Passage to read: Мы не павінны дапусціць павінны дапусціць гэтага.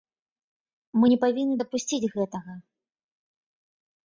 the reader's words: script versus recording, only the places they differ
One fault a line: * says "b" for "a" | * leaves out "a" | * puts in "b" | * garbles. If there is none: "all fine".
* leaves out "павінны дапусціць"